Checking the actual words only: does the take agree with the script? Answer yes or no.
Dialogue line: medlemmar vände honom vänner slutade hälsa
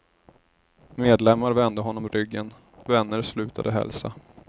no